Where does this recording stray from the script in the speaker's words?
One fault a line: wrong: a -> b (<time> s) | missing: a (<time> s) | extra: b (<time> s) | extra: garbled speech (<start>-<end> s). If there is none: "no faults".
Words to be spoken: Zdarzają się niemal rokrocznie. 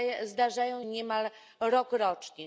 missing: się (0.8 s)